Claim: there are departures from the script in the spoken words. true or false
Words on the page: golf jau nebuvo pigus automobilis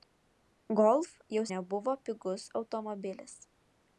false